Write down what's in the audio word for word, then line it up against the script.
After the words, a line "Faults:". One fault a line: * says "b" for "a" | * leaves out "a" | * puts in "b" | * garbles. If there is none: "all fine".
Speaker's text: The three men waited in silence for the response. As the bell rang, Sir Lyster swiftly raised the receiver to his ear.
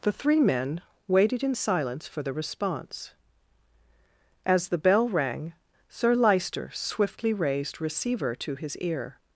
The three men waited in silence for the response. As the bell rang, Sir Lyster swiftly raised receiver to his ear.
Faults:
* leaves out "the"